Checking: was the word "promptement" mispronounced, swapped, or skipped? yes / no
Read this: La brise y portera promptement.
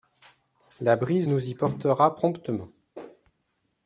no